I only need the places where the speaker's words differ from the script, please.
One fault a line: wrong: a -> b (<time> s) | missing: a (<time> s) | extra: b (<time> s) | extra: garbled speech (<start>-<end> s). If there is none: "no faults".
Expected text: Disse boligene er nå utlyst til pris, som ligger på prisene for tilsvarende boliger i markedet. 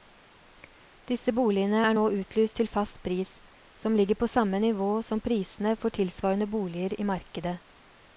extra: fast (2.7 s)
extra: samme nivå som (4.3 s)